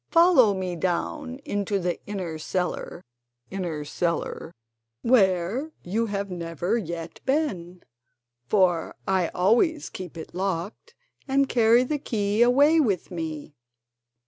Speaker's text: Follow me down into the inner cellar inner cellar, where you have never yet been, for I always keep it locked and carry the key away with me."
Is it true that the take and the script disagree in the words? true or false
false